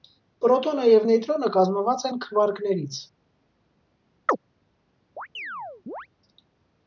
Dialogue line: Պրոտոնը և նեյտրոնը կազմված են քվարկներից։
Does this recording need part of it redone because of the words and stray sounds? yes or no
yes